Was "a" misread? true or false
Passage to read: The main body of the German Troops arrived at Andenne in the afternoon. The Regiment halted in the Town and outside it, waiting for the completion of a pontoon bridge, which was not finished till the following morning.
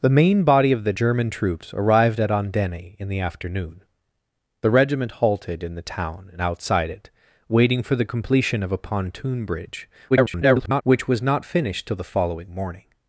false